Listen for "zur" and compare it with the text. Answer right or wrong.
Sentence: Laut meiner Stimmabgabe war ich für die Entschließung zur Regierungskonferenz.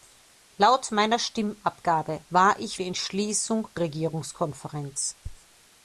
wrong